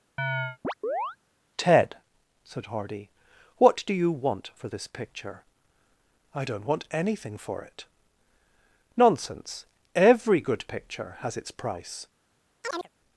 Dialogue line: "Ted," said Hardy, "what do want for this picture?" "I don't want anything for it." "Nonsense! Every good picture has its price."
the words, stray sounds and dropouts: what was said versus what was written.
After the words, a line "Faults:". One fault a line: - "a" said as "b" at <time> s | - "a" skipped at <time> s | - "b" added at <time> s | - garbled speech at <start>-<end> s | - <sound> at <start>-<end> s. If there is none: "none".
"Ted," said Hardy, "what do you want for this picture?" "I don't want anything for it." "Nonsense! Every good picture has its price."
Faults:
- chirp at 0.2-1.2 s
- "you" added at 3.9 s
- chirp at 12.6-12.9 s